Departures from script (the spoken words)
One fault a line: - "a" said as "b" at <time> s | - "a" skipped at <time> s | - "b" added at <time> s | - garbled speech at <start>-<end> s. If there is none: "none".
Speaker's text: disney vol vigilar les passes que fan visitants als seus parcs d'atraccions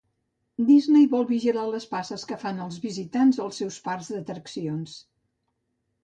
- "els" added at 2.6 s